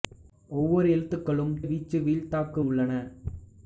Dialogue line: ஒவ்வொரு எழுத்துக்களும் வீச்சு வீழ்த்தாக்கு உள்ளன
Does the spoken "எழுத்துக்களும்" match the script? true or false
true